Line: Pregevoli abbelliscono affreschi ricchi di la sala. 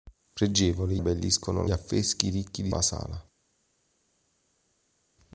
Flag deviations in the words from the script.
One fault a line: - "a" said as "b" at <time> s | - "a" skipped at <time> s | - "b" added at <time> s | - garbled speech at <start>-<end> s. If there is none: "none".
none